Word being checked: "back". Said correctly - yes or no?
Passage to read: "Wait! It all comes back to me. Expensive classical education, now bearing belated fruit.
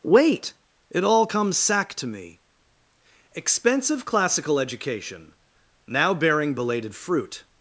no